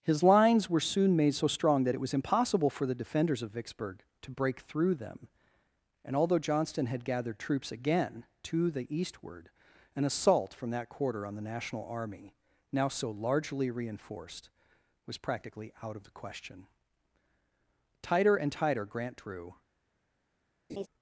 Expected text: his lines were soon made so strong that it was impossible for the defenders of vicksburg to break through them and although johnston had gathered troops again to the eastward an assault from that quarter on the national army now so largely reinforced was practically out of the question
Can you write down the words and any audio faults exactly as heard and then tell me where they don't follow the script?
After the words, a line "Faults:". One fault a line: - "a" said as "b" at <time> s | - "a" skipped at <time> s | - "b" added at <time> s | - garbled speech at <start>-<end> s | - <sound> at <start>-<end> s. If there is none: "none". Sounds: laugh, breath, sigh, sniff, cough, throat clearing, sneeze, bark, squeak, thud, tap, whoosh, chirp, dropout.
his lines were soon made so strong that it was impossible for the defenders of vicksburg to break through them and although johnston had gathered troops again to the eastward an assault from that quarter on the national army now so largely reinforced was practically out of the question tighter and tighter grant drew
Faults:
- "tighter and tighter grant drew" added at 18.0 s
- laugh at 20.7-20.9 s